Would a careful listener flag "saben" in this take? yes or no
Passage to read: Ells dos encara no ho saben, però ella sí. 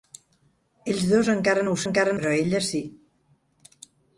yes